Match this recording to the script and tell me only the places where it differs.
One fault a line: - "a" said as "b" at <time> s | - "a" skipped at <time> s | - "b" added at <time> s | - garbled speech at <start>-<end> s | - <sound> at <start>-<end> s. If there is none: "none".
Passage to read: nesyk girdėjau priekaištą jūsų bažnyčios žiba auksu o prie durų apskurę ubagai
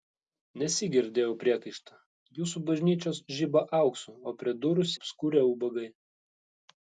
none